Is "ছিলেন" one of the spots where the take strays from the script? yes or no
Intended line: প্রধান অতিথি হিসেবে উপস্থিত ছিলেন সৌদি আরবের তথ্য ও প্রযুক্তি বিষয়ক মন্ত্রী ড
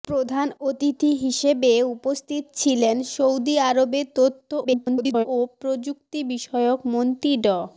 no